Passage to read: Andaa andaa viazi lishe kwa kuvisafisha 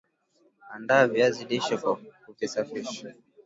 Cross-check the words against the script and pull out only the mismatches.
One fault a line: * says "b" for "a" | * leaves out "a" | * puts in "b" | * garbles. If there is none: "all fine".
* leaves out "andaa"